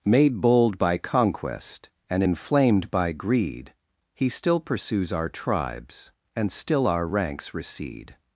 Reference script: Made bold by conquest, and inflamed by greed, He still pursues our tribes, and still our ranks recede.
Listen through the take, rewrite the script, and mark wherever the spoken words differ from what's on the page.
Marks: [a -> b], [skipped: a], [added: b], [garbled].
Made bold by conquest, and inflamed by greed, He still pursues our tribes, and still our ranks recede.